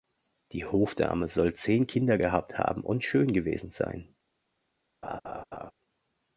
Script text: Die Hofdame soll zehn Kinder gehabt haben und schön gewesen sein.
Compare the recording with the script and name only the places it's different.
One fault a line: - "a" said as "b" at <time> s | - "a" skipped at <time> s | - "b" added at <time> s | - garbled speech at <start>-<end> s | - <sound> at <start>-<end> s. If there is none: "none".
- laugh at 5.0-5.7 s